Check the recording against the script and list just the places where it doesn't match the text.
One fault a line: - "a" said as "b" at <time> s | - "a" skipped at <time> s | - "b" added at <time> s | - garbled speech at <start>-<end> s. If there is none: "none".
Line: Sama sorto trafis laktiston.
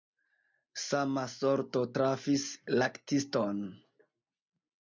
none